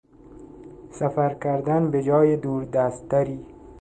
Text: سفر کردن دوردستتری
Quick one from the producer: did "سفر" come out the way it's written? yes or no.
yes